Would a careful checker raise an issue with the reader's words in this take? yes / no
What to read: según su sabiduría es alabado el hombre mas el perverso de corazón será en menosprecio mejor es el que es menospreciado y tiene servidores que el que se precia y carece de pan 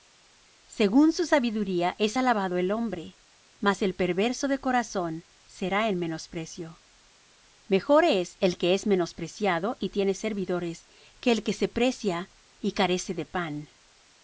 no